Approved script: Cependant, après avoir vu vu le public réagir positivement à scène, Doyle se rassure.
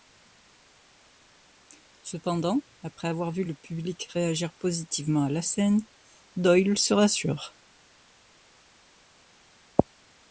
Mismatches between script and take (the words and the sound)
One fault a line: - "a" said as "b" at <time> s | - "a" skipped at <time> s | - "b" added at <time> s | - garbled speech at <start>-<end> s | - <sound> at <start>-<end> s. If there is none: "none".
- "vu" skipped at 3.4 s
- "la" added at 5.3 s